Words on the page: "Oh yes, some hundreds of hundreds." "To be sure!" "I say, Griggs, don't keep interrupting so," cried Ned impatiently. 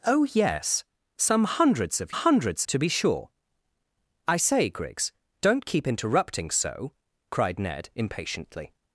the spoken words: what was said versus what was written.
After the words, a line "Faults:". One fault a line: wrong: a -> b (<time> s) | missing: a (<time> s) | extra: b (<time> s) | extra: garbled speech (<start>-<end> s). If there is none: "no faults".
"Oh yes, some hundreds of hundreds." "To be sure!" "I say, Griggs, don't keep interrupting so," cried Ned impatiently.
Faults:
no faults